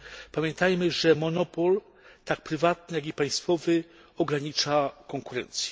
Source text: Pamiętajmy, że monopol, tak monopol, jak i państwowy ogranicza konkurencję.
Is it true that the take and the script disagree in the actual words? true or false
true